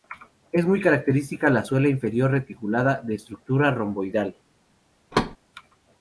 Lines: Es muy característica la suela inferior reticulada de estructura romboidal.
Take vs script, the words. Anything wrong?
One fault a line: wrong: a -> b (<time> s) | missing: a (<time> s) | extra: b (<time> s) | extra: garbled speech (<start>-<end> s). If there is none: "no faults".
no faults